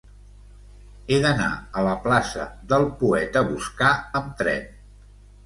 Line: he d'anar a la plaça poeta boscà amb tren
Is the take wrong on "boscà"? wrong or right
right